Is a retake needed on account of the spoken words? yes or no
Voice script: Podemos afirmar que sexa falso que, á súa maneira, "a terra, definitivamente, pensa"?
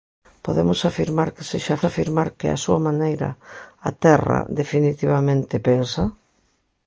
yes